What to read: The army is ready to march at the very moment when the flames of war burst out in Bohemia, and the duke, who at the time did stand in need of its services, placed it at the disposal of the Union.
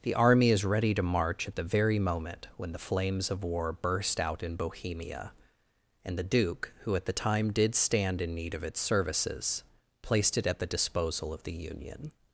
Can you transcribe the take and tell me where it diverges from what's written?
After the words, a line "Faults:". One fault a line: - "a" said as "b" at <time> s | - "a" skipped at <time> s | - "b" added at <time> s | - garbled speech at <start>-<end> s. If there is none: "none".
The army is ready to march at the very moment when the flames of war burst out in Bohemia, and the duke, who at the time did stand in need of its services, placed it at the disposal of the Union.
Faults:
none